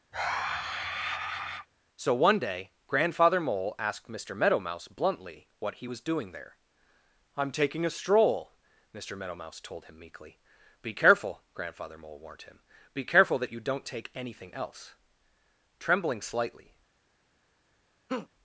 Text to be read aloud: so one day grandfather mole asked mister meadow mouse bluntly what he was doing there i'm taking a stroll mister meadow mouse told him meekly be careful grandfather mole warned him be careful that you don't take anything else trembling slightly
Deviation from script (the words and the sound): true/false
true